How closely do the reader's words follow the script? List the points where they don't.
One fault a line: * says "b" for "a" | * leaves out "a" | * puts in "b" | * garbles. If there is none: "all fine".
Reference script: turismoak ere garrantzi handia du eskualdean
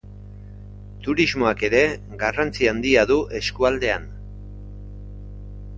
all fine